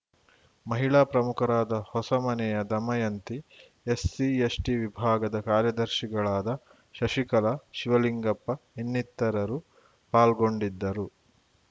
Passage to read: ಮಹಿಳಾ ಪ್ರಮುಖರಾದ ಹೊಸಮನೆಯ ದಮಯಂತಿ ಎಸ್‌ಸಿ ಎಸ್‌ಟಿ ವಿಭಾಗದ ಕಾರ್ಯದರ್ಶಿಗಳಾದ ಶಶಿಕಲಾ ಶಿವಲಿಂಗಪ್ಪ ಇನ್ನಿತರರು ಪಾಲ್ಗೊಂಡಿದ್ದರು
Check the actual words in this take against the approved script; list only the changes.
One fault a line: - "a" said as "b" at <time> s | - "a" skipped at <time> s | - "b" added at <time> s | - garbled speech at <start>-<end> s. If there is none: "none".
none